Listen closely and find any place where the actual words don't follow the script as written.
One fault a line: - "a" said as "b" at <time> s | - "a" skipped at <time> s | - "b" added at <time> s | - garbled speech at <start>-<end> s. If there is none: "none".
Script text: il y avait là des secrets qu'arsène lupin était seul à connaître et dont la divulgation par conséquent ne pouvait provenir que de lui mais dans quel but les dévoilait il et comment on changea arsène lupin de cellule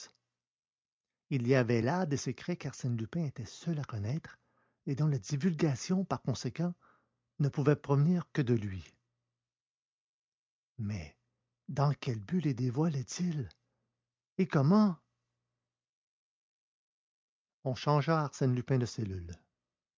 none